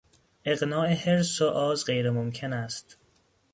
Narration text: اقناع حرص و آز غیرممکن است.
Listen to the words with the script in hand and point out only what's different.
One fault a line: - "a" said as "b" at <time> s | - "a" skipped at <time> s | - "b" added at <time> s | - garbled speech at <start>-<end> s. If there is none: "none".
none